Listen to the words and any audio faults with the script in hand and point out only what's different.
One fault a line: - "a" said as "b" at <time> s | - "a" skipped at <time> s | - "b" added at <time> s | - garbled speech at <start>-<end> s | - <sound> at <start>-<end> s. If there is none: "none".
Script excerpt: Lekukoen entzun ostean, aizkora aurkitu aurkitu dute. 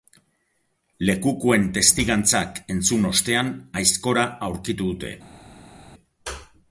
- "testigantzak" added at 1.8 s
- "aurkitu" skipped at 4.9 s